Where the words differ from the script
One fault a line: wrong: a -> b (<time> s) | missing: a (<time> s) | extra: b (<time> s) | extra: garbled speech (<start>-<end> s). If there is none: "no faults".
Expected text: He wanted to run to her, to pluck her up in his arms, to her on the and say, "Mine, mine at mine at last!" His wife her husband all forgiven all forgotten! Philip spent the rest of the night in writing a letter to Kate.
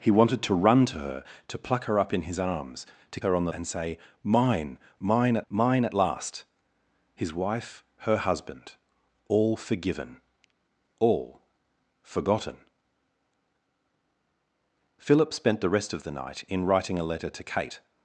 no faults